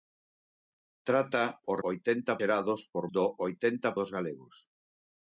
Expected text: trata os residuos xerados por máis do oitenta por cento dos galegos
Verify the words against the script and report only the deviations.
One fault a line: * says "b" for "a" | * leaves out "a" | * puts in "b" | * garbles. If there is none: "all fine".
* says "oitenta" for "residuos"
* leaves out "máis"
* leaves out "por cento"